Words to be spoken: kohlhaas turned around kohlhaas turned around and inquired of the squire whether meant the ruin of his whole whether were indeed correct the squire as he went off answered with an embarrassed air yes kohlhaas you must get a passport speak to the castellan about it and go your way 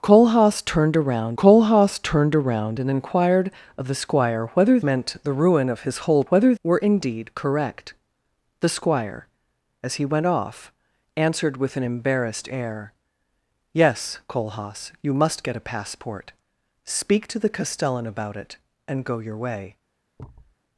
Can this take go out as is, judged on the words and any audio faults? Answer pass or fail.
fail